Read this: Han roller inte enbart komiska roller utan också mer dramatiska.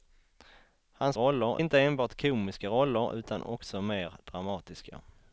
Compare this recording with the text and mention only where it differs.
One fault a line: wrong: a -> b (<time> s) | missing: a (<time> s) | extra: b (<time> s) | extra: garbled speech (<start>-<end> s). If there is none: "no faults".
no faults